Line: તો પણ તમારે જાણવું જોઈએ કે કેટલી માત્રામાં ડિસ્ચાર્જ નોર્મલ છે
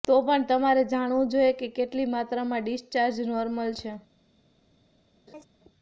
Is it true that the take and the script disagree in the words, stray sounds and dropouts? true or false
true